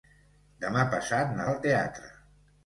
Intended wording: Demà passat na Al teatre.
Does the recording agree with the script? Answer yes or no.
yes